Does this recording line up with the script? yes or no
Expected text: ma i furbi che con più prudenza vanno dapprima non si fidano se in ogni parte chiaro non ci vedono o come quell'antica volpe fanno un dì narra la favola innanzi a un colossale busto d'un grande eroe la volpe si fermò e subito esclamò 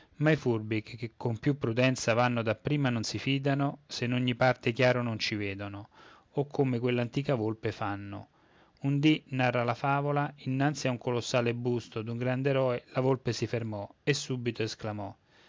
yes